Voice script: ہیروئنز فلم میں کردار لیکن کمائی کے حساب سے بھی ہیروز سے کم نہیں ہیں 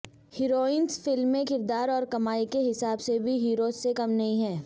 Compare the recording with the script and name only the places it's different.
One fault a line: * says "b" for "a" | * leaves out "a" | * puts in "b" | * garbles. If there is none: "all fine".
* says "اور" for "لیکن"